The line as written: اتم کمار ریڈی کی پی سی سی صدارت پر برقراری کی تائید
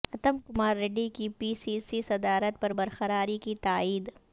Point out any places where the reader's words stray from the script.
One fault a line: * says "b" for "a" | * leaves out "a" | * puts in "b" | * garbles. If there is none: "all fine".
all fine